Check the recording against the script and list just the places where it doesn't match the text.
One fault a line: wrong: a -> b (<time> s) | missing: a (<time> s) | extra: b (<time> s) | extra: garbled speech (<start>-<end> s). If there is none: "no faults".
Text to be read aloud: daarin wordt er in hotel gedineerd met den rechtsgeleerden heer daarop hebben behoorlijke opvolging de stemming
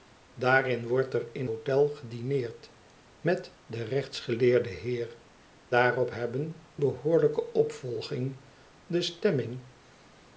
no faults